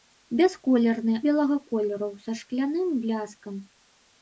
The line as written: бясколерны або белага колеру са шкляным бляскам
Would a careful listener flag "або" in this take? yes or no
yes